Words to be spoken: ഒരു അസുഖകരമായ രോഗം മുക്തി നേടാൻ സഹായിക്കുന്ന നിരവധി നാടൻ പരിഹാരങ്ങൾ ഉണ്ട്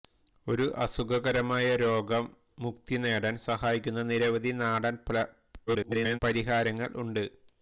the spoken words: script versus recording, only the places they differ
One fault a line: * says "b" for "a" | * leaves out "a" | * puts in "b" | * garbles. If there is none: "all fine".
* garbles